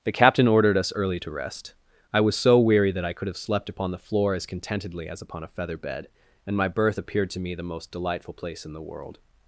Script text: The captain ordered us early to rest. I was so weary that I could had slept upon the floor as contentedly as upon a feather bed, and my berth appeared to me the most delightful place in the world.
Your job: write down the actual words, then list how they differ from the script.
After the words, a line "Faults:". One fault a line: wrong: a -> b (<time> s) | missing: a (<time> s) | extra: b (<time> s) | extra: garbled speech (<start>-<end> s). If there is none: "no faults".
The captain ordered us early to rest. I was so weary that I could have slept upon the floor as contentedly as upon a feather bed, and my berth appeared to me the most delightful place in the world.
Faults:
wrong: had -> have (3.3 s)